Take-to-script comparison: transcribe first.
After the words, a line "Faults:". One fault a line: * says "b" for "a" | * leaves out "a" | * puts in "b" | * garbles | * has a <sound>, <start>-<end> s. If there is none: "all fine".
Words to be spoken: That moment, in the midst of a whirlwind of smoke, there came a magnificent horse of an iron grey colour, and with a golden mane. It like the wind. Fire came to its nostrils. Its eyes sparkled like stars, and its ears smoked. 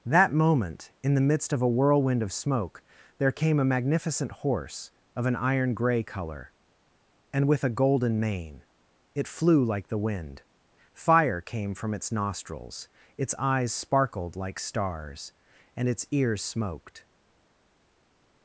That moment, in the midst of a whirlwind of smoke, there came a magnificent horse of an iron grey colour, and with a golden mane. It flew like the wind. Fire came from its nostrils. Its eyes sparkled like stars, and its ears smoked.
Faults:
* puts in "flew"
* says "from" for "to"